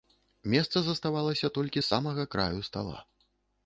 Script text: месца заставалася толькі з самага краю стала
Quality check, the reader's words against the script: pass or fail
pass